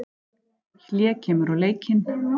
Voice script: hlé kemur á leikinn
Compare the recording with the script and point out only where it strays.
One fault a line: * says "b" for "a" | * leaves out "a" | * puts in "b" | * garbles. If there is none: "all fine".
all fine